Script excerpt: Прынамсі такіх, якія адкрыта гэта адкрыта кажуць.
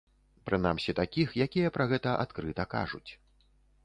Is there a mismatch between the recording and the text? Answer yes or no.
yes